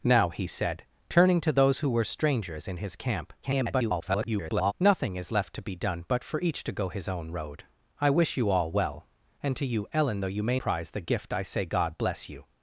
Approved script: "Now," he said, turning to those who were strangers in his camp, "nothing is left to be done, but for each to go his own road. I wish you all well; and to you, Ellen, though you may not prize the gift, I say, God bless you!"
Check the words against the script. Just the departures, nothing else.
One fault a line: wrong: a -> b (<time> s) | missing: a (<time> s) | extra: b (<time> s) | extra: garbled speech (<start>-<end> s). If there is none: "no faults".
extra: garbled speech (3.4-4.7 s)
missing: not (10.6 s)